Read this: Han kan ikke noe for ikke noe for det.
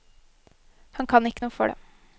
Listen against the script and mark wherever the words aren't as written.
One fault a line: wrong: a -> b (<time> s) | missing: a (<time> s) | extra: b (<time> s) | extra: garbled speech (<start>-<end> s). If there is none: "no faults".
missing: ikke noe for (1.7 s)